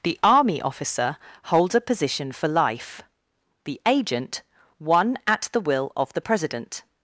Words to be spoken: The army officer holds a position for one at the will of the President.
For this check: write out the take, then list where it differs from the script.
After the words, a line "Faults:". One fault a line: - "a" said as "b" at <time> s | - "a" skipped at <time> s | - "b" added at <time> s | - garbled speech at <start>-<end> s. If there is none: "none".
The army officer holds a position for life; the agent, one at the will of the President.
Faults:
- "life the agent" added at 2.5 s